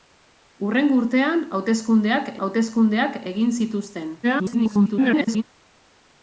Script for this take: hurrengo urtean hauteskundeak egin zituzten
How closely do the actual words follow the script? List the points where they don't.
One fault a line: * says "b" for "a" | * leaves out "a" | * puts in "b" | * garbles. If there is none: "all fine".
* puts in "hauteskundeak"
* garbles